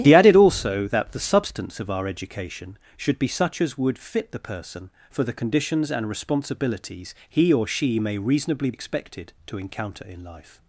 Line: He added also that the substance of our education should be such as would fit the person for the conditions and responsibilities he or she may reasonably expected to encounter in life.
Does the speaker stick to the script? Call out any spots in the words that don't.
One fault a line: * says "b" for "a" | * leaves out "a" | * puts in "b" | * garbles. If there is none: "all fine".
all fine